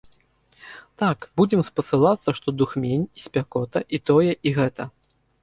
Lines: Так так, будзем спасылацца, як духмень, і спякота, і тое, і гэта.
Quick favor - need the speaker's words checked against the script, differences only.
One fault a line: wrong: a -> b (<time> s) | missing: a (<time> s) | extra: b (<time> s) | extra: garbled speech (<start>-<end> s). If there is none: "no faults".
missing: так (1.3 s)
wrong: як -> што (2.4 s)